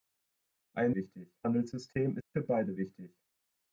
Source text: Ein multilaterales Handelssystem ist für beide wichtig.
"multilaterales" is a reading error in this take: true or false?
true